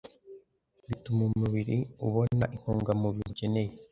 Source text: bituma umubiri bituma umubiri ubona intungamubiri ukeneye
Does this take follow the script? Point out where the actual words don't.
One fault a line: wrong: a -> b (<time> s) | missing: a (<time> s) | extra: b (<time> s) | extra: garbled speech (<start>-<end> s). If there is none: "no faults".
missing: bituma umubiri (1.8 s)